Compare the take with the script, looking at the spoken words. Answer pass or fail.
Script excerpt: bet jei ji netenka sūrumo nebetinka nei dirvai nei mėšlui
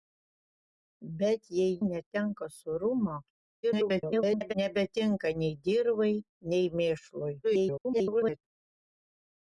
fail